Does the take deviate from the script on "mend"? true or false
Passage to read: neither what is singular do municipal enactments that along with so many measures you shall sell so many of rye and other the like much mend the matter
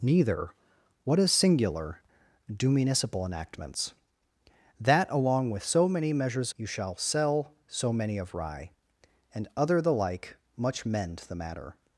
false